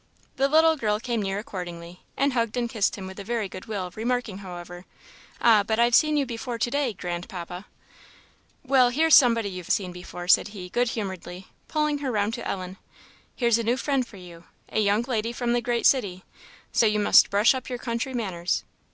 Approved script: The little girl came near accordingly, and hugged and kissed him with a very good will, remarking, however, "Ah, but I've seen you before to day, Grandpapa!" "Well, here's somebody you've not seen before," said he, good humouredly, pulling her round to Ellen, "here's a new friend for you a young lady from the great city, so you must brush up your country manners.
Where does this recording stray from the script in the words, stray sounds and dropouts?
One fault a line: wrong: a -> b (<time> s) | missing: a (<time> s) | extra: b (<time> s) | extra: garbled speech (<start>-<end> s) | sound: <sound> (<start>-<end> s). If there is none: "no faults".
missing: not (9.7 s)